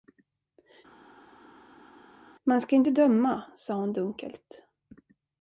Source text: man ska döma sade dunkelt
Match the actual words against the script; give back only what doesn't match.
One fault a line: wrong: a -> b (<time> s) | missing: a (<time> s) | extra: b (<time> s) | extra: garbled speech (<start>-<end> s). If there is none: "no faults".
extra: inte (2.7 s)
extra: hon (3.8 s)